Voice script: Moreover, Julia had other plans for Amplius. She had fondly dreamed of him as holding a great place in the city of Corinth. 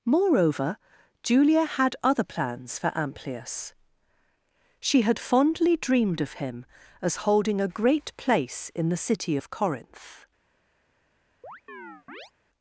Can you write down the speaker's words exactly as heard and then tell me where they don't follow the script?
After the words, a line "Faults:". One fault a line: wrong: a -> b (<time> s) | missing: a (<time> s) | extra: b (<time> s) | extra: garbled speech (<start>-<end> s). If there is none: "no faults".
Moreover, Julia had other plans for Amplius. She had fondly dreamed of him as holding a great place in the city of Corinth.
Faults:
no faults